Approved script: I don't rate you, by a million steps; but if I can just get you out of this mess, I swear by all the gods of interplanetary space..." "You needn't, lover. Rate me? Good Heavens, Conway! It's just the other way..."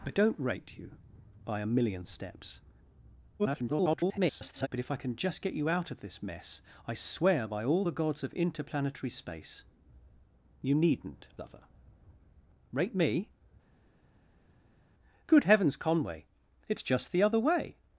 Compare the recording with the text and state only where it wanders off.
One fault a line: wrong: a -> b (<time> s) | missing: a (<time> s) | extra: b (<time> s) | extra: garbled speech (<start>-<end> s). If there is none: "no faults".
extra: garbled speech (3.4-4.7 s)